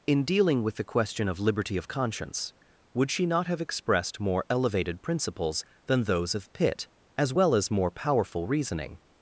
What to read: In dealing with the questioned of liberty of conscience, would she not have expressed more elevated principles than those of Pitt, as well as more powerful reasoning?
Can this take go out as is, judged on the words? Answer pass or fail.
fail